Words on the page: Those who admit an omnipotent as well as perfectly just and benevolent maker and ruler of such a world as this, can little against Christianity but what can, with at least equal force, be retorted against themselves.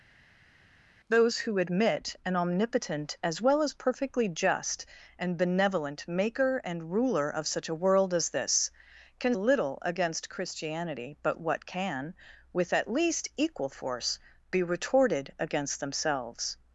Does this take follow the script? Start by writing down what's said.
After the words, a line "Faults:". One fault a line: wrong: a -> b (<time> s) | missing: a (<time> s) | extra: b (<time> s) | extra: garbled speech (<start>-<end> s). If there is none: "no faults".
Those who admit an omnipotent as well as perfectly just and benevolent maker and ruler of such a world as this, can little against Christianity but what can, with at least equal force, be retorted against themselves.
Faults:
no faults